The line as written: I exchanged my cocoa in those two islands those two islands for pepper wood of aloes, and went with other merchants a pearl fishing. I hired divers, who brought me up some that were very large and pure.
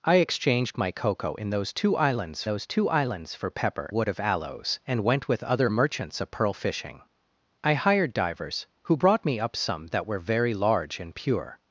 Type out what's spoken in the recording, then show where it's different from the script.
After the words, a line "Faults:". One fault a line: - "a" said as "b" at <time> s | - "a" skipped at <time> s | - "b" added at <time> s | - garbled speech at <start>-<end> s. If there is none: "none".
I exchanged my cocoa in those two islands those two islands for pepper wood of aloes, and went with other merchants a pearl fishing. I hired divers, who brought me up some that were very large and pure.
Faults:
none